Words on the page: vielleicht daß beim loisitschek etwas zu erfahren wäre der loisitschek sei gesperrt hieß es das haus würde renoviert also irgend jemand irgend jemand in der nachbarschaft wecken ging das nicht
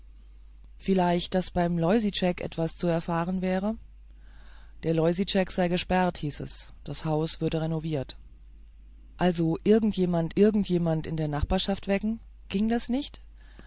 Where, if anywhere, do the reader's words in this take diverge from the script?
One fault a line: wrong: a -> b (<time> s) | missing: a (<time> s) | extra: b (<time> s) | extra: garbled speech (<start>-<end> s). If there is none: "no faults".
no faults